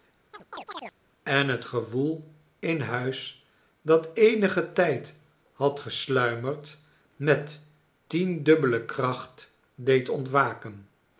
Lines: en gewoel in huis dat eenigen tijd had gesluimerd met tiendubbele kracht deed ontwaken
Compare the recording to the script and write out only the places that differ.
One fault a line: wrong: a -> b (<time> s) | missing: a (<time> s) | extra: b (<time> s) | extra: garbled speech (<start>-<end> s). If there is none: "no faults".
extra: het (1.5 s)